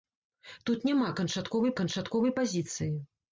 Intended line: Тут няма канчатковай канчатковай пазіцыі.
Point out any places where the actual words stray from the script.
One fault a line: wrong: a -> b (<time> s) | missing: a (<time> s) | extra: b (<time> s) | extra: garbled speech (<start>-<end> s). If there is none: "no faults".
no faults